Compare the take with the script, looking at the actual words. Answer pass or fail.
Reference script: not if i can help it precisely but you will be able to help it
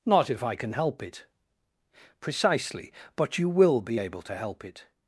pass